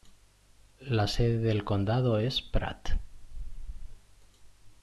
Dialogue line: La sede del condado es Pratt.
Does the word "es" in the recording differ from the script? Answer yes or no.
no